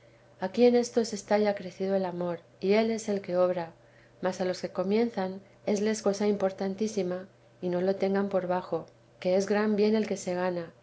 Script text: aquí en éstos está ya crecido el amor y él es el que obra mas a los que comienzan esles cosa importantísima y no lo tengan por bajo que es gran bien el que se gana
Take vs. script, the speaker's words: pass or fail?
pass